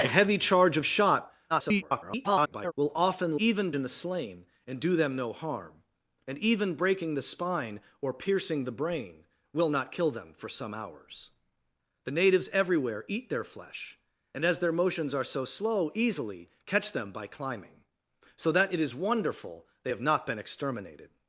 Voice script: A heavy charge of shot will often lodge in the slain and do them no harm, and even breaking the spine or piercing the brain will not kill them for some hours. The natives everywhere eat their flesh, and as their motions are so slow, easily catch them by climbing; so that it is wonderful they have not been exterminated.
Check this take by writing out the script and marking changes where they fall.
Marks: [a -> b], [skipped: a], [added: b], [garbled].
A heavy charge of shot [garbled] will often [lodge -> even] in the slain and do them no harm, and even breaking the spine or piercing the brain will not kill them for some hours. The natives everywhere eat their flesh, and as their motions are so slow, easily catch them by climbing; so that it is wonderful they have not been exterminated.